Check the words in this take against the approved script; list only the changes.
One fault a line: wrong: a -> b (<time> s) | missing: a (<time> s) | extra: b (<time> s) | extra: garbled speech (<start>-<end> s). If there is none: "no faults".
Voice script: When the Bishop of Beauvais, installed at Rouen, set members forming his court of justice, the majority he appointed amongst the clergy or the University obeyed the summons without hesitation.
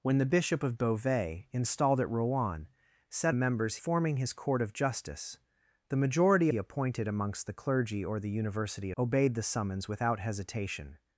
no faults